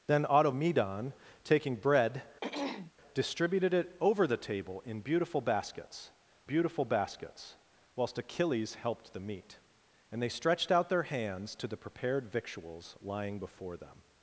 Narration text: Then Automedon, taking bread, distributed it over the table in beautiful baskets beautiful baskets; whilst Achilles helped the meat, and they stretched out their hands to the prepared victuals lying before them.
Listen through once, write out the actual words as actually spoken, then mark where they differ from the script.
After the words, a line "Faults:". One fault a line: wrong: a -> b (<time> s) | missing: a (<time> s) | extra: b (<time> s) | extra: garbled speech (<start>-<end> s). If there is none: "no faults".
Then Automedon, taking bread, distributed it over the table in beautiful baskets beautiful baskets; whilst Achilles helped the meat, and they stretched out their hands to the prepared victuals lying before them.
Faults:
no faults